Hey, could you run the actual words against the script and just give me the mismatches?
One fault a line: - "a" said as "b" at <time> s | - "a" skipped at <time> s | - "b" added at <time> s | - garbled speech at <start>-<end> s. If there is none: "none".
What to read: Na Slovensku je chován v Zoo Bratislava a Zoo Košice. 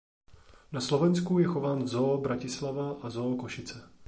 none